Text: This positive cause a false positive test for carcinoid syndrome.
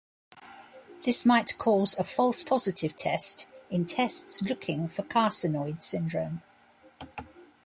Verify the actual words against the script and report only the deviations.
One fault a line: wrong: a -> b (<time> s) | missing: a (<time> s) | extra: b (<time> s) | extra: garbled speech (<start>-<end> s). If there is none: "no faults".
wrong: positive -> might (1.3 s)
extra: in tests looking (3.7 s)